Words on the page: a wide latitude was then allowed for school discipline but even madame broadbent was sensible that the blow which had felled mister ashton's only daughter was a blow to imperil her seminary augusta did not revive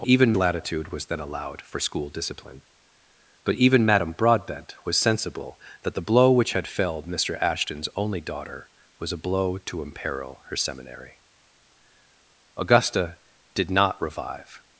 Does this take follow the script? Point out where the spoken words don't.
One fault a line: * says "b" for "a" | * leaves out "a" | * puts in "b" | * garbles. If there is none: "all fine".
* says "even" for "wide"